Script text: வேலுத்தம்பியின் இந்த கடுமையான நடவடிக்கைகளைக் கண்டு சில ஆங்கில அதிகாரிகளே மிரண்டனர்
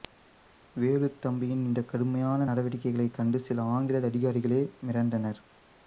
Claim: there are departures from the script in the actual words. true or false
false